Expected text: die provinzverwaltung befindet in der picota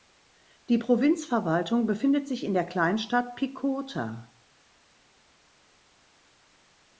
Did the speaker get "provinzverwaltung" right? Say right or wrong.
right